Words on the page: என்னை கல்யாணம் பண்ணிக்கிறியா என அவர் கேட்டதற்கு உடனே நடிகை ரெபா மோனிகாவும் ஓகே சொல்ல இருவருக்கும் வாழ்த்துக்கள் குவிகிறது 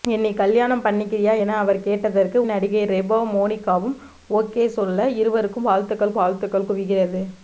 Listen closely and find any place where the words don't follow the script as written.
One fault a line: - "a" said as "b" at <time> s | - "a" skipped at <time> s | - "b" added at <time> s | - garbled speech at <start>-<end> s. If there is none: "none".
- "உடனே" skipped at 2.4 s
- "வாழ்த்துக்கள்" added at 6.2 s